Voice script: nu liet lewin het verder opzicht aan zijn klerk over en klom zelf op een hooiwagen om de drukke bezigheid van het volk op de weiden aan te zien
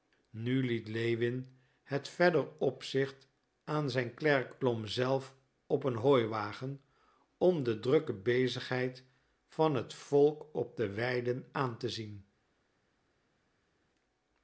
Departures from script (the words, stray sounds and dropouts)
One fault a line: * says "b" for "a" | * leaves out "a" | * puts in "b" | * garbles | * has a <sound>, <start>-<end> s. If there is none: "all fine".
* leaves out "over en"